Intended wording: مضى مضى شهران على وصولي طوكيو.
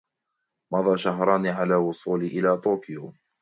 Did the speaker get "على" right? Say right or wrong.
right